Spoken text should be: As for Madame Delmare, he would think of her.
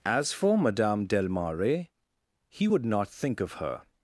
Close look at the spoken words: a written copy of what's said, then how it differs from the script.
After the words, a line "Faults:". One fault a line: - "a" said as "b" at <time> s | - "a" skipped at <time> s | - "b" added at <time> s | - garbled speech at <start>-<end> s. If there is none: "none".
As for Madame Delmare, he would not think of her.
Faults:
- "not" added at 2.9 s